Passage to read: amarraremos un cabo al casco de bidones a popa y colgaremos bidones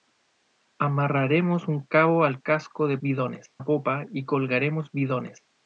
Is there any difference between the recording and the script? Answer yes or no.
no